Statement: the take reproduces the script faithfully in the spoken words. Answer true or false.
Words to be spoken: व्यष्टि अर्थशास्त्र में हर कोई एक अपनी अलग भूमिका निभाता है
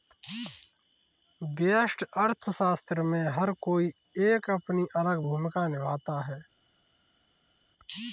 true